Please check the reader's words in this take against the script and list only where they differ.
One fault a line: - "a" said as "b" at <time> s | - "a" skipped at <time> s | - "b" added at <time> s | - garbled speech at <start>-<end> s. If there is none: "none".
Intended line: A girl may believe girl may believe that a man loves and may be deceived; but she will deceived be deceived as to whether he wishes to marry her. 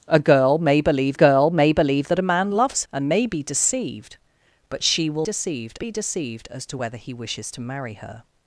none